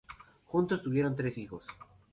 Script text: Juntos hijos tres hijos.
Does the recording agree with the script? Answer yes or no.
no